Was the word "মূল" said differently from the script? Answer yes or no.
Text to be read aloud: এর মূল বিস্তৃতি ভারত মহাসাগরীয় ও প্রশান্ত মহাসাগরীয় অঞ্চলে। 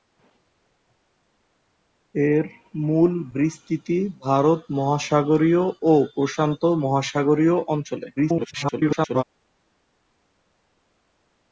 no